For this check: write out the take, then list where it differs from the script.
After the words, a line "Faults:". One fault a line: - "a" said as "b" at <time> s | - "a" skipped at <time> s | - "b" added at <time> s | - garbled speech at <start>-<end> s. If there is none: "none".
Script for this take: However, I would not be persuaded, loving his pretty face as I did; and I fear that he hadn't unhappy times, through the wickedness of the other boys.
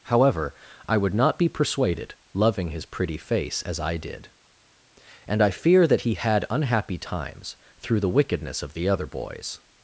However, I would not be persuaded, loving his pretty face as I did; and I fear that he had unhappy times, through the wickedness of the other boys.
Faults:
- "hadn't" said as "had" at 6.1 s